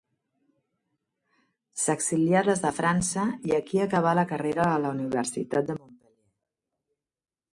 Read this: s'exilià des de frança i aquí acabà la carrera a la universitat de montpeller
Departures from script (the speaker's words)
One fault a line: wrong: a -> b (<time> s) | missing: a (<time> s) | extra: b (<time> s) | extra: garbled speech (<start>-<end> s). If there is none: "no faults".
no faults